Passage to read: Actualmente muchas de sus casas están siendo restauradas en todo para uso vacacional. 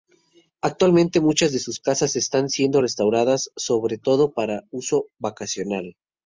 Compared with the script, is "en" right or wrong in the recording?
wrong